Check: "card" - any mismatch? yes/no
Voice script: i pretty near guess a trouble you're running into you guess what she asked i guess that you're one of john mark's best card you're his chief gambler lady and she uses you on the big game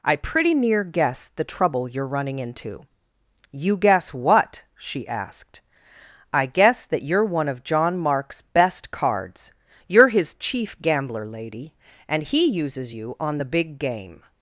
yes